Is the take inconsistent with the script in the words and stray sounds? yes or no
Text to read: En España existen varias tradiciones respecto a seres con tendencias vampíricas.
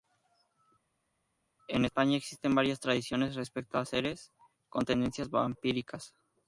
no